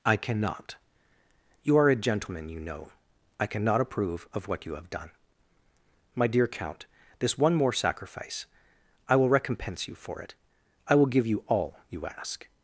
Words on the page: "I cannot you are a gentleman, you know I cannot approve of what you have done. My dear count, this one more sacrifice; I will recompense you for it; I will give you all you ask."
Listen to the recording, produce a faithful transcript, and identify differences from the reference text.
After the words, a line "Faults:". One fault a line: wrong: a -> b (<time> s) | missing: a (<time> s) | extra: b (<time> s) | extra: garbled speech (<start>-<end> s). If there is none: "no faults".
"I cannot you are a gentleman, you know I cannot approve of what you have done. My dear count, this one more sacrifice; I will recompense you for it; I will give you all you ask."
Faults:
no faults